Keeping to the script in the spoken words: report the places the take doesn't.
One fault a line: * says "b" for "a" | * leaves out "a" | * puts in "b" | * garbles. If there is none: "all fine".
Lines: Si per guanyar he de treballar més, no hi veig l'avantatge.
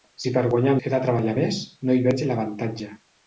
all fine